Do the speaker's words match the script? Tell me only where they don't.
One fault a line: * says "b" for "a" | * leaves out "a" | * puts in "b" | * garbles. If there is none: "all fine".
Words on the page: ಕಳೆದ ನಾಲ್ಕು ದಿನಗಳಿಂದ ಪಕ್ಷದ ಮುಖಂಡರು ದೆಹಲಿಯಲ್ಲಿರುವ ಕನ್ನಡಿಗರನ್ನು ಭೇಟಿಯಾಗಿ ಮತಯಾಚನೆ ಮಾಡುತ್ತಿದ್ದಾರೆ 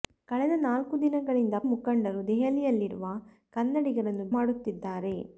* leaves out "ಪಕ್ಷದ"
* leaves out "ಭೇಟಿಯಾಗಿ ಮತಯಾಚನೆ"